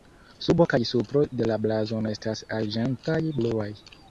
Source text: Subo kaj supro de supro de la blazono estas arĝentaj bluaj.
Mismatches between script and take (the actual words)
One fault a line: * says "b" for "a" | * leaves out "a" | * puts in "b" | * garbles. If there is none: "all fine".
* leaves out "supro de"